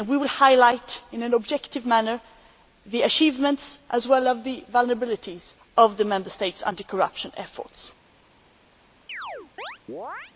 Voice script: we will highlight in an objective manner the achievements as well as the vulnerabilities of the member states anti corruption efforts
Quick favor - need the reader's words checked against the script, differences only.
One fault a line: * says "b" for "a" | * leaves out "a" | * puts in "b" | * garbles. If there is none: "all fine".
all fine